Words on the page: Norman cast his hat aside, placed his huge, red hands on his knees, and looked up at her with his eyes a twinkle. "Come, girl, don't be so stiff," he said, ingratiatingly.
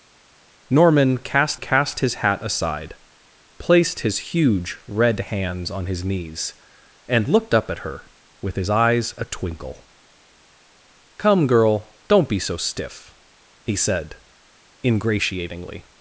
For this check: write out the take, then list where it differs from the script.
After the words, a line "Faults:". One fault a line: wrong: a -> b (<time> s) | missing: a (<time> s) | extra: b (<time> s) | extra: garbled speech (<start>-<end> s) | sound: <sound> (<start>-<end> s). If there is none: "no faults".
Norman cast cast his hat aside, placed his huge, red hands on his knees, and looked up at her with his eyes a twinkle. "Come, girl, don't be so stiff," he said, ingratiatingly.
Faults:
extra: cast (1.6 s)